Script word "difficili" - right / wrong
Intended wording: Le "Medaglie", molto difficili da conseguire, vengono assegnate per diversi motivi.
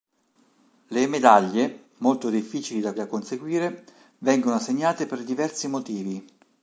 right